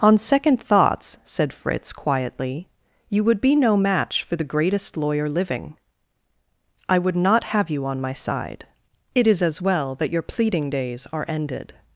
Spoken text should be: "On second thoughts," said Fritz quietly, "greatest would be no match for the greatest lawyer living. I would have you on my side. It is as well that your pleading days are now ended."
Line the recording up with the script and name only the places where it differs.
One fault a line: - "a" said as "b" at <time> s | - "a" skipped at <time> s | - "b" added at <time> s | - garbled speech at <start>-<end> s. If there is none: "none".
- "greatest" said as "you" at 3.1 s
- "not" added at 7.2 s
- "now" skipped at 11.2 s